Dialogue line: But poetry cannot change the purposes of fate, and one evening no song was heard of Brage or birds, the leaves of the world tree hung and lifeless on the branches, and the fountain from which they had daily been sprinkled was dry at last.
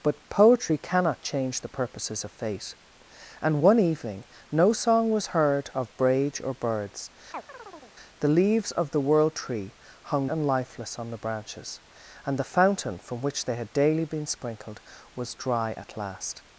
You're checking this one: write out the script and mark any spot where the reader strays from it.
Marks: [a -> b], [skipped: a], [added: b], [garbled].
But poetry cannot change the purposes of fate, and one evening no song was heard of Brage or birds, the leaves of the world tree hung and lifeless on the branches, and the fountain from which they had daily been sprinkled was dry at last.